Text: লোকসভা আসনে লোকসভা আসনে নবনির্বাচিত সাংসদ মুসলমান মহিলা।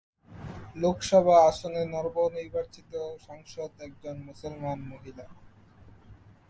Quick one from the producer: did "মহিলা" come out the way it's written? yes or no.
yes